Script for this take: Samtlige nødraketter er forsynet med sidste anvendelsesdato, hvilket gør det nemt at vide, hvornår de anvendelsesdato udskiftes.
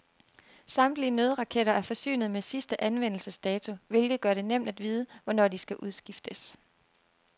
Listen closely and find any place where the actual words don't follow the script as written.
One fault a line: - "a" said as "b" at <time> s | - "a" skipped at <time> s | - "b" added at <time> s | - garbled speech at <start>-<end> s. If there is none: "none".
- "anvendelsesdato" said as "skal" at 5.6 s